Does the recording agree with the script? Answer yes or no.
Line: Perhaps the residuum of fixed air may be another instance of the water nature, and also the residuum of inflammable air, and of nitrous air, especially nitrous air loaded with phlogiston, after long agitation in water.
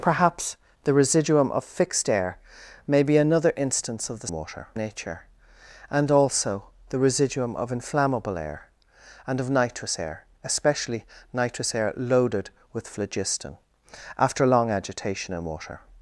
yes